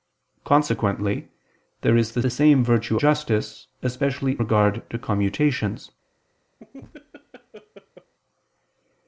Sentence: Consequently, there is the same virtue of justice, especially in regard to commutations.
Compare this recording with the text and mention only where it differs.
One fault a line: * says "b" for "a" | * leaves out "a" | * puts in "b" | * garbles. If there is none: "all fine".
* puts in "the"
* leaves out "of"
* leaves out "in"